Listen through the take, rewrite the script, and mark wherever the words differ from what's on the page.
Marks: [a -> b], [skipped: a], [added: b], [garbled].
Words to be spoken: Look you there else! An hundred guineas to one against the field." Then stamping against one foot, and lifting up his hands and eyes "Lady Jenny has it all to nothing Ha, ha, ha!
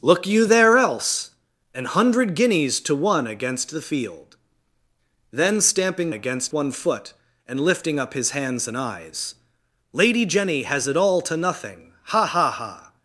Look you there else! An hundred guineas to one against the field." Then stamping against one foot, and lifting up his hands and eyes "Lady Jenny has it all to nothing Ha, ha, ha!